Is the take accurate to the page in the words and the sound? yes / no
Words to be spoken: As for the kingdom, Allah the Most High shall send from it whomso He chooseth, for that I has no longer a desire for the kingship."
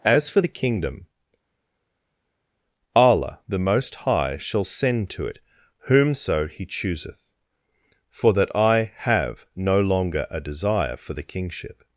no